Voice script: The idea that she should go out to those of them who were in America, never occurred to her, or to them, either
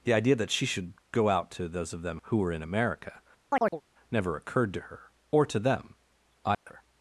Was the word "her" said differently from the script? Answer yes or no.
no